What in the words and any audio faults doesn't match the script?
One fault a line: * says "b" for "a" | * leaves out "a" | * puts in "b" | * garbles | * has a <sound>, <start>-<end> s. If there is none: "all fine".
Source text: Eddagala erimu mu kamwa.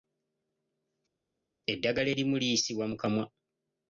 * puts in "liyisibwa"